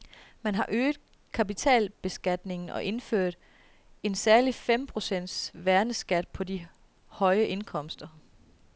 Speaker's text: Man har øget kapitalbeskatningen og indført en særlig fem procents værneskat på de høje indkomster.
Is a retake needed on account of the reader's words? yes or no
no